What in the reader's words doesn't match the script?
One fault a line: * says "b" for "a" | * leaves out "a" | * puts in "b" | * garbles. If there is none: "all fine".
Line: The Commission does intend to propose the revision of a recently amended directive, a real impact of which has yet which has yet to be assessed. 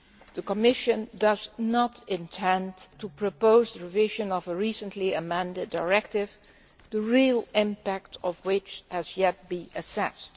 * puts in "not"
* says "the" for "a"
* leaves out "which has yet"